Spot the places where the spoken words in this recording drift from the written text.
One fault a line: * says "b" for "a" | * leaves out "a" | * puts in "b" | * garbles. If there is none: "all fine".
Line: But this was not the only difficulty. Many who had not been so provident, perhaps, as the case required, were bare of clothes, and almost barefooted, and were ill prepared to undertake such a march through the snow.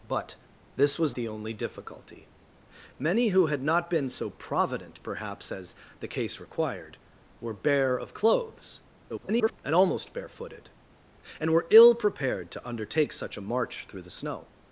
* leaves out "not"
* garbles